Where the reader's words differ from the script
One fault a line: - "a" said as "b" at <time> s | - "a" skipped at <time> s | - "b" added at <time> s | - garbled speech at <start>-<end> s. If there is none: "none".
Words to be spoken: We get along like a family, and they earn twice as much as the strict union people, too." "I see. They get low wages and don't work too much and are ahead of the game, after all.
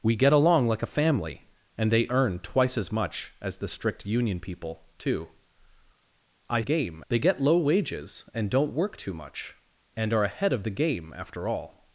- "see" said as "game" at 6.6 s